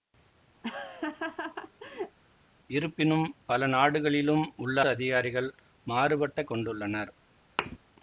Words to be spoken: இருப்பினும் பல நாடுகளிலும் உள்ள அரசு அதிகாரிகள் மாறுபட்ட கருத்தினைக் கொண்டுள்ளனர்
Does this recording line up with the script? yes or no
no